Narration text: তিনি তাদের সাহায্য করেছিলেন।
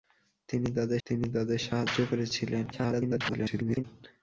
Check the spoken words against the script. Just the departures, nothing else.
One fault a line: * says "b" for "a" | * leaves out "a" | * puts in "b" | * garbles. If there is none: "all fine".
* puts in "তিনি তাদের"
* garbles